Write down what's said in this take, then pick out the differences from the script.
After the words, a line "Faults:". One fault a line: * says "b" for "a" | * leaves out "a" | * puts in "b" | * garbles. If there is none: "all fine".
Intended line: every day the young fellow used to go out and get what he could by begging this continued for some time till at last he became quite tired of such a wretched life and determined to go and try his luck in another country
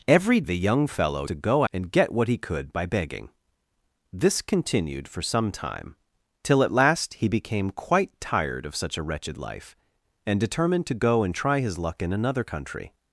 every the young fellow to go and get what he could by begging this continued for some time till at last he became quite tired of such a wretched life and determined to go and try his luck in another country
Faults:
* leaves out "day"
* leaves out "used"
* leaves out "out"